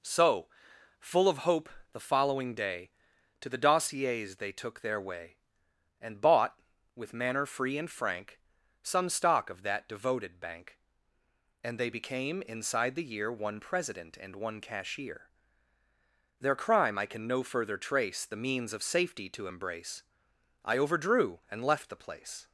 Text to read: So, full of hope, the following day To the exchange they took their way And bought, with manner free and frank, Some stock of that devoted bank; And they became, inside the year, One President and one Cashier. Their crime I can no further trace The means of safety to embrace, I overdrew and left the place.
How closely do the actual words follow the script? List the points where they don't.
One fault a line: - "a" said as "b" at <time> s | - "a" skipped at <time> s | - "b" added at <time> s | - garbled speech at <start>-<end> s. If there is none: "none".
- "exchange" said as "dossiers" at 3.6 s